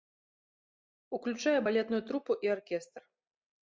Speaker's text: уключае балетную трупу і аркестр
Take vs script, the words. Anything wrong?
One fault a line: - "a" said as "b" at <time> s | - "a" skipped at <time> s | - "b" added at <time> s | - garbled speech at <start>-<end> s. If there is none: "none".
none